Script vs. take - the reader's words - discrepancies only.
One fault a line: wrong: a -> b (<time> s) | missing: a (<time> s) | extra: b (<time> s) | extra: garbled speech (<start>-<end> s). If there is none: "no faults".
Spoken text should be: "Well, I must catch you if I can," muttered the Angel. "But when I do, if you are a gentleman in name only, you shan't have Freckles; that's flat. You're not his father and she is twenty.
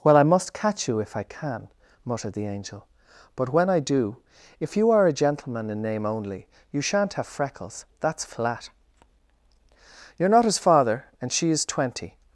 no faults